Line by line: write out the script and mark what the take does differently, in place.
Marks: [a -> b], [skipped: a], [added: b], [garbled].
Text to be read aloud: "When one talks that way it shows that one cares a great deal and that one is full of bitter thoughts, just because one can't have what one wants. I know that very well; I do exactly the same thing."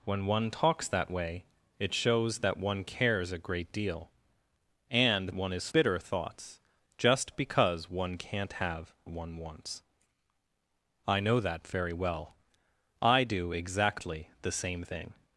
"When one talks that way it shows that one cares a great deal and [skipped: that] one is [skipped: full of] bitter thoughts, just because one can't have [skipped: what] one wants. I know that very well; I do exactly the same thing."